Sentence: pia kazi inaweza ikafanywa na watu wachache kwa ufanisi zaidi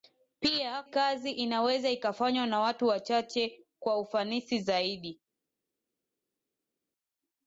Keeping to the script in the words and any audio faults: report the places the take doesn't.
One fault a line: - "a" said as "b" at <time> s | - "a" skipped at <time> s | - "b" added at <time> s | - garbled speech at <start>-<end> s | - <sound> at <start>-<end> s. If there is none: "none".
none